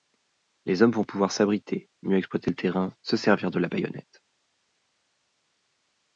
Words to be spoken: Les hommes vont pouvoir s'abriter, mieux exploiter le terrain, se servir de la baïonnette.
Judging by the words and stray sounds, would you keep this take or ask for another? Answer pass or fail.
pass